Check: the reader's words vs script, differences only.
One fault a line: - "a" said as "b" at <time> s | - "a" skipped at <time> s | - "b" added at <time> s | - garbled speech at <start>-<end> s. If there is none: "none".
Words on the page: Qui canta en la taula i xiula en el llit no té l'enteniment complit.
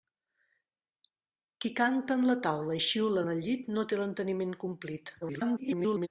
- garbled speech at 5.2-6.1 s